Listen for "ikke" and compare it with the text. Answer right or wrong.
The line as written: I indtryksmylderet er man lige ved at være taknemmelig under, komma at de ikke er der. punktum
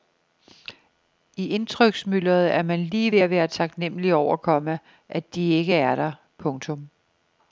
right